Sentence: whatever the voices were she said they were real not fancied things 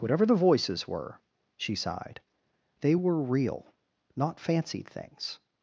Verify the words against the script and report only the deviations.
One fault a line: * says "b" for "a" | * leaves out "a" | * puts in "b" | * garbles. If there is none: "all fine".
* says "sighed" for "said"